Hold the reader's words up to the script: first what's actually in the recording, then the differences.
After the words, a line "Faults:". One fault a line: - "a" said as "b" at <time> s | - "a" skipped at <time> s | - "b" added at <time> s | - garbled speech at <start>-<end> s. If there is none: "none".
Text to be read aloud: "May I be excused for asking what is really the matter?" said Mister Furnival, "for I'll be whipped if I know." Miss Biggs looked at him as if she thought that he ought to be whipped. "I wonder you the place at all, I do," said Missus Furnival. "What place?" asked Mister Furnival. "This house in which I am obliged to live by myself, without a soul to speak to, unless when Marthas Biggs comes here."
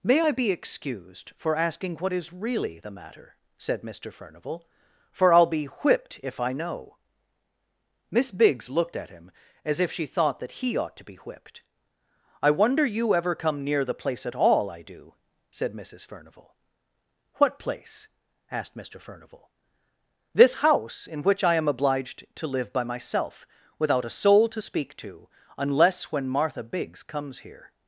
"May I be excused for asking what is really the matter?" said Mister Furnival, "for I'll be whipped if I know." Miss Biggs looked at him as if she thought that he ought to be whipped. "I wonder you ever come near the place at all, I do," said Missus Furnival. "What place?" asked Mister Furnival. "This house in which I am obliged to live by myself, without a soul to speak to, unless when Martha Biggs comes here."
Faults:
- "ever come near" added at 13.1 s
- "Marthas" said as "Martha" at 26.3 s